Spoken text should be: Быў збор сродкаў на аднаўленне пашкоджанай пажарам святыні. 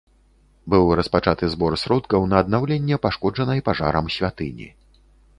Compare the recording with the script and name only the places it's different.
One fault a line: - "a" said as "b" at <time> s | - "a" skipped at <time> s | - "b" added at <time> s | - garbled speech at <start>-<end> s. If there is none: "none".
- "распачаты" added at 1.0 s